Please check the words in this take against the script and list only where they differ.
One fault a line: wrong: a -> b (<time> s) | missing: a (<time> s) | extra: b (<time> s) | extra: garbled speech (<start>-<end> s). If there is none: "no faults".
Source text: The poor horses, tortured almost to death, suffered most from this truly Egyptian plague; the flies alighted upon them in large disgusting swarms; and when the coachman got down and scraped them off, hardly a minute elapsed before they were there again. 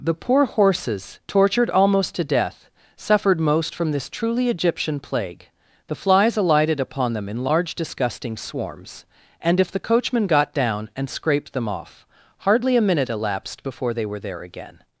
wrong: when -> if (9.6 s)